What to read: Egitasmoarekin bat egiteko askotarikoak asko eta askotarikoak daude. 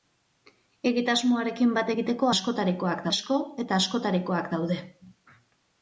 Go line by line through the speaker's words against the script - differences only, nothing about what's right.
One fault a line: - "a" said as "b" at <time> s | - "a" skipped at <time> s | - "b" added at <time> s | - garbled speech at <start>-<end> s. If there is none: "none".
none